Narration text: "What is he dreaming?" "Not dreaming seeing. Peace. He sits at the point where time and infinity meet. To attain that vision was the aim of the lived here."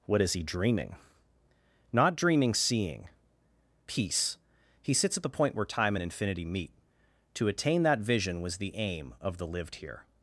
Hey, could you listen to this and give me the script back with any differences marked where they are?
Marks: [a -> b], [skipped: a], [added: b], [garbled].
"What is he dreaming?" "Not dreaming seeing. Peace. He sits at the point where time and infinity meet. To attain that vision was the aim of the lived here."